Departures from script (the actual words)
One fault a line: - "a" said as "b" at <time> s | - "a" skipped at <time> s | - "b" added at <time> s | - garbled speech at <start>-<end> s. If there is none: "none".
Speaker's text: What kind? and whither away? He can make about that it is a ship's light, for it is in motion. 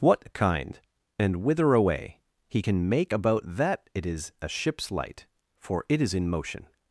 none